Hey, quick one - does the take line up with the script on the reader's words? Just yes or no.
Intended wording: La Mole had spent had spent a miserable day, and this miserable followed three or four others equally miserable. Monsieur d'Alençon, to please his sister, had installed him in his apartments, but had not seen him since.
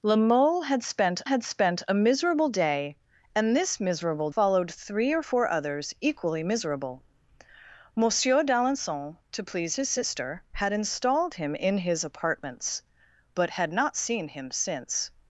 yes